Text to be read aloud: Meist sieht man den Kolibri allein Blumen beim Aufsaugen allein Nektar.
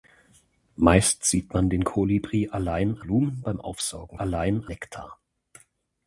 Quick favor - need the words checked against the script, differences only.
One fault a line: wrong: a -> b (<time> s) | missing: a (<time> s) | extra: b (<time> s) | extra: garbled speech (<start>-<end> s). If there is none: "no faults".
no faults